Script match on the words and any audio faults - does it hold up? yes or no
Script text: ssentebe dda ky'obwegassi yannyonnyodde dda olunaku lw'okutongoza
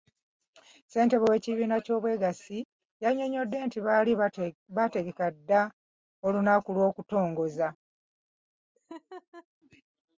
no